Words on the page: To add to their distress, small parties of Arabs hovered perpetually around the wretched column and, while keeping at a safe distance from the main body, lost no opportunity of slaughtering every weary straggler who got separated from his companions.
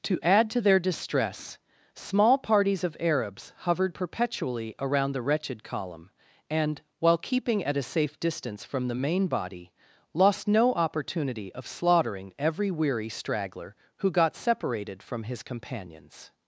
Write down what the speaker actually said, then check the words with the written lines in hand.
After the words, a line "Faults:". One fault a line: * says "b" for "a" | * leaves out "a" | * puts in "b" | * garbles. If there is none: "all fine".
To add to their distress, small parties of Arabs hovered perpetually around the wretched column and, while keeping at a safe distance from the main body, lost no opportunity of slaughtering every weary straggler who got separated from his companions.
Faults:
all fine